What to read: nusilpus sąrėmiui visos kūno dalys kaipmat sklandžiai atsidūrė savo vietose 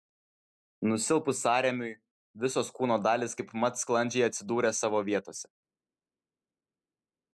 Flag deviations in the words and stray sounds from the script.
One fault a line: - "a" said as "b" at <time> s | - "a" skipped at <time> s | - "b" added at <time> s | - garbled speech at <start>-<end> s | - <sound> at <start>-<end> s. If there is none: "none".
none